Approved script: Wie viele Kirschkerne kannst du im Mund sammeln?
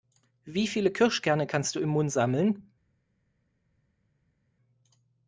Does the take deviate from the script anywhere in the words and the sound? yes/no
no